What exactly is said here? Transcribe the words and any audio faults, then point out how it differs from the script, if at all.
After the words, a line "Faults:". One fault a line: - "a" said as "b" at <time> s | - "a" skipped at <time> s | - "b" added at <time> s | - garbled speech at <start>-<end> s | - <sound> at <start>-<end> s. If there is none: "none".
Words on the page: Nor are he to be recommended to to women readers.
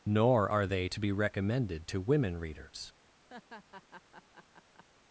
Nor are they to be recommended to women readers.
Faults:
- "he" said as "they" at 0.6 s
- "to" skipped at 2.0 s
- laugh at 3.3-4.8 s